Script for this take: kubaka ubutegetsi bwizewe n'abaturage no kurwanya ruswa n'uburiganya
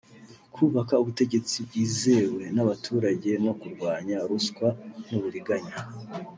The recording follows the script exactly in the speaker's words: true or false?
true